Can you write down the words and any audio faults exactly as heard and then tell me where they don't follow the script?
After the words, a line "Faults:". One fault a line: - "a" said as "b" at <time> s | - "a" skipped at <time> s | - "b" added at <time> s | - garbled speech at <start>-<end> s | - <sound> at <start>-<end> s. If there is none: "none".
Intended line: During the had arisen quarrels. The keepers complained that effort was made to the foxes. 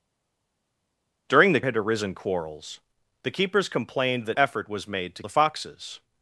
During the had arisen quarrels. The keepers complained that effort was made to the foxes.
Faults:
none